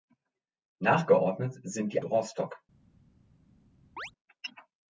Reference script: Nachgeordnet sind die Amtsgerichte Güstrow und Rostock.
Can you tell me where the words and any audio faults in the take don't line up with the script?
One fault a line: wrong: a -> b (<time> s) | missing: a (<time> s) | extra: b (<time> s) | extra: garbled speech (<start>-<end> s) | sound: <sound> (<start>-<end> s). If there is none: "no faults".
missing: Amtsgerichte Güstrow und (2.0 s)
sound: chirp (4.0-4.1 s)